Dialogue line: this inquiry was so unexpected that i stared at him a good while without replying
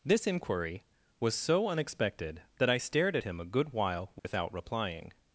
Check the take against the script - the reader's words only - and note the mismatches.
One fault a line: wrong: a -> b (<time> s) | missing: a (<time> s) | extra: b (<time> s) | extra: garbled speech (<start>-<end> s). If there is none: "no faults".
no faults